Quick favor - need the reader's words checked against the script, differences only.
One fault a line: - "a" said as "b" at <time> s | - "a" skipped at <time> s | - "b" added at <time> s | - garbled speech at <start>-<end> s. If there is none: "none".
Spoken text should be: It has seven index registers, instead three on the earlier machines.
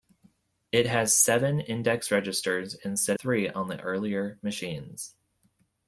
none